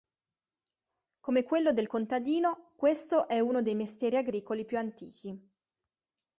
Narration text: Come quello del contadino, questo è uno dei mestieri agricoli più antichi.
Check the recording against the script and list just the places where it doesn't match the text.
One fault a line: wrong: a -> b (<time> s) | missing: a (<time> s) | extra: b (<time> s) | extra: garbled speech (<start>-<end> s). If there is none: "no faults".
no faults